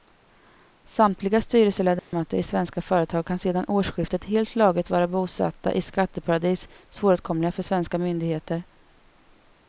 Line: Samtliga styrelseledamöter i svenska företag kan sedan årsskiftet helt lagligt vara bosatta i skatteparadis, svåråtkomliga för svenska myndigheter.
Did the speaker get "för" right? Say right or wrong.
right